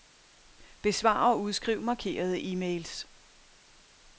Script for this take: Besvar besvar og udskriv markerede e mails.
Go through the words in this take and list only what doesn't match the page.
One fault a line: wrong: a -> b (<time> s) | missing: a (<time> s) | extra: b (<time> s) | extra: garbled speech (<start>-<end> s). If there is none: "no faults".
missing: besvar (1.3 s)